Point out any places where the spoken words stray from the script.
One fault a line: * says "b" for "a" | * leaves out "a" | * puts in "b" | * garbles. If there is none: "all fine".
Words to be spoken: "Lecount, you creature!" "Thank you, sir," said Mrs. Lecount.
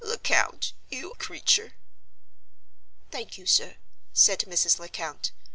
all fine